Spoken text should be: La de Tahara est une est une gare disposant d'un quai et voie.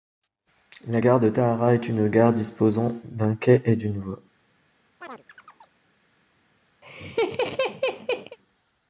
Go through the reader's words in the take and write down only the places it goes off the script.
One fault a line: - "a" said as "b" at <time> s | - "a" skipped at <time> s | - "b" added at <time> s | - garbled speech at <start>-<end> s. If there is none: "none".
- "gare" added at 1.0 s
- "est une" skipped at 2.1 s
- "d'une" added at 3.7 s